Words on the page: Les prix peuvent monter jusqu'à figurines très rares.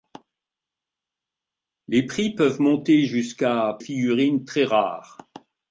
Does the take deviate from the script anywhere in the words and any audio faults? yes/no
no